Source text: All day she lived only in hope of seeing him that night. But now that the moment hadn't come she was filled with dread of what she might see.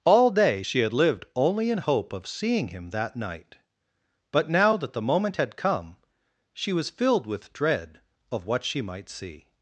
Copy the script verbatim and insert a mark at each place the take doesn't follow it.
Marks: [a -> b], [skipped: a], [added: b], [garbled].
All day she [added: had] lived only in hope of seeing him that night. But now that the moment [hadn't -> had] come she was filled with dread of what she might see.